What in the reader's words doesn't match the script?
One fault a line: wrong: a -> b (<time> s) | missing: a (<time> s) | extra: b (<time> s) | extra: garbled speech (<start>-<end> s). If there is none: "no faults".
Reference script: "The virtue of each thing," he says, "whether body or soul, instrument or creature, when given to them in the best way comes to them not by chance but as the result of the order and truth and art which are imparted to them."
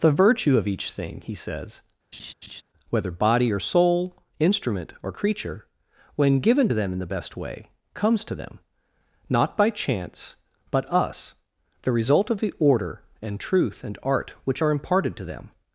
wrong: as -> us (10.9 s)